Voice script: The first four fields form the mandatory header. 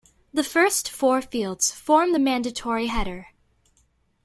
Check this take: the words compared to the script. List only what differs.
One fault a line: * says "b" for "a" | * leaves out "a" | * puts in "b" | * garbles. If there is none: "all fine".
all fine